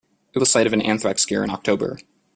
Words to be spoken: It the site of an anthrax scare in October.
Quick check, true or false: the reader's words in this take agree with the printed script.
true